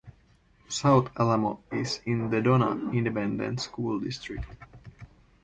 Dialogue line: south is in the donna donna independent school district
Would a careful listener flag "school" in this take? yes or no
no